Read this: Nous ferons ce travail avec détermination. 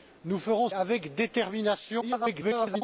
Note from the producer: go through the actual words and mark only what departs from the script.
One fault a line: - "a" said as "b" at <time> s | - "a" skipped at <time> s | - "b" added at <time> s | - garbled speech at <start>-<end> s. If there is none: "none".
- "ce travail" skipped at 0.7 s
- garbled speech at 2.0-2.8 s